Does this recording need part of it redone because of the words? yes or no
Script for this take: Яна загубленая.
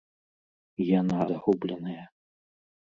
no